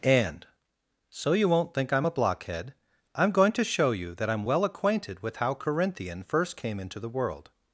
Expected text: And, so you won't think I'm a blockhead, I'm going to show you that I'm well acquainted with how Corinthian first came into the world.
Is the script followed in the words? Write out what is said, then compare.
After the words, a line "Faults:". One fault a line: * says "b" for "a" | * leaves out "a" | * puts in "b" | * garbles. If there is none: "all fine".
And, so you won't think I'm a blockhead, I'm going to show you that I'm well acquainted with how Corinthian first came into the world.
Faults:
all fine